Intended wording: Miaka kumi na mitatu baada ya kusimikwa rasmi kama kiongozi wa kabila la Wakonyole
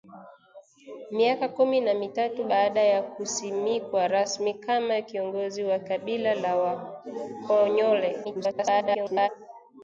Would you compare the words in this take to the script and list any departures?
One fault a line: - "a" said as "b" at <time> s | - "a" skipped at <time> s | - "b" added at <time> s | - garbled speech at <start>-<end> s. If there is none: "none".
- garbled speech at 8.2-9.3 s